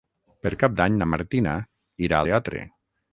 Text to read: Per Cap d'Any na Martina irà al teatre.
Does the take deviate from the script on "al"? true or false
true